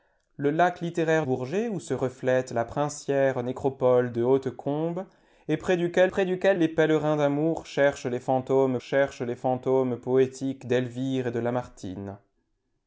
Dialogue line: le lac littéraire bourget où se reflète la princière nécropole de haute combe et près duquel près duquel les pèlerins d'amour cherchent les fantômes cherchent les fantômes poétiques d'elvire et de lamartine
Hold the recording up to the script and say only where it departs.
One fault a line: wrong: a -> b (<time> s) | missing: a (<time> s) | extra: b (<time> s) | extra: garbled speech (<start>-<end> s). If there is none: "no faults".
no faults